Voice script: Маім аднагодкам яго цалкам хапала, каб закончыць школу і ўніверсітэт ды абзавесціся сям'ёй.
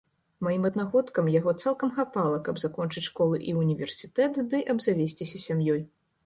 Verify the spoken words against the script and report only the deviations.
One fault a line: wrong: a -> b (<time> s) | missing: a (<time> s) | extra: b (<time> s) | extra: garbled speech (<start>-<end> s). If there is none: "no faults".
no faults